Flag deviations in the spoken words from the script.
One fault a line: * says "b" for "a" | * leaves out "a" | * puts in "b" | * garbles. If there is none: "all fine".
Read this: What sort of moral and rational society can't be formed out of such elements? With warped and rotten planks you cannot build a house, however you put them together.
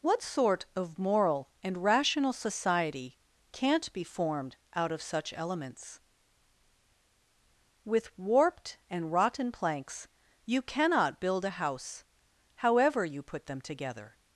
all fine